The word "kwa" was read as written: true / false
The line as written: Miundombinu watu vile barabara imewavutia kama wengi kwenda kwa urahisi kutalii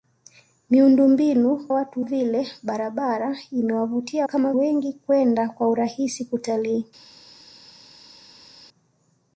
true